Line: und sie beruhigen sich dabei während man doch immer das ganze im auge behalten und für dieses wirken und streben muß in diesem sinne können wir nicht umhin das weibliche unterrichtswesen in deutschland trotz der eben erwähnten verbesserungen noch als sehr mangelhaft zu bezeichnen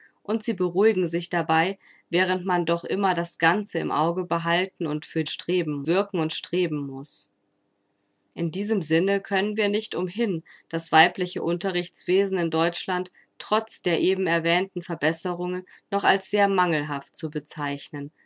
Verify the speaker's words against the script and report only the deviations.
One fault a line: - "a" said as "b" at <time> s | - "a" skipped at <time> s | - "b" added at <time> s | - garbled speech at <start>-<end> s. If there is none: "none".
- "dieses" said as "streben" at 5.3 s